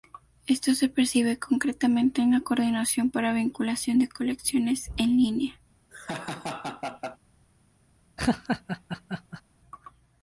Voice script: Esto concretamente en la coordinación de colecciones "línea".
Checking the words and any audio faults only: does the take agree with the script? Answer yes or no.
no